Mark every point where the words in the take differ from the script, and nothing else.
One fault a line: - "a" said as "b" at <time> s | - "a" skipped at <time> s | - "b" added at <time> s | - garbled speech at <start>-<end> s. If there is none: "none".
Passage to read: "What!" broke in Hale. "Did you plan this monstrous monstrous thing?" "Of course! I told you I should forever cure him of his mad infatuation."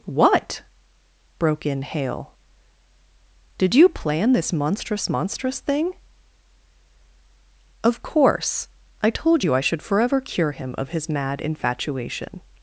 none